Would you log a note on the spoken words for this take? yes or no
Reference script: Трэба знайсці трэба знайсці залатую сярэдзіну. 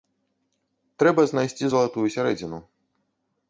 yes